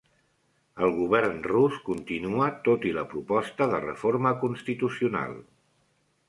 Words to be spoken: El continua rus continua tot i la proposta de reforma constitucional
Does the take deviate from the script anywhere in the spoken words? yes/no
yes